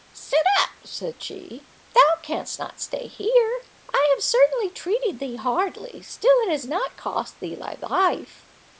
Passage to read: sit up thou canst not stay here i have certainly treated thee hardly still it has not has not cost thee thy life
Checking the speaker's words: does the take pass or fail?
fail